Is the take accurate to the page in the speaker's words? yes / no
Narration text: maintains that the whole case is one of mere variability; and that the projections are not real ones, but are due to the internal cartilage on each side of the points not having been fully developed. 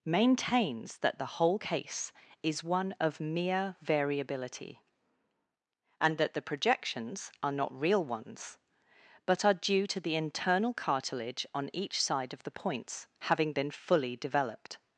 no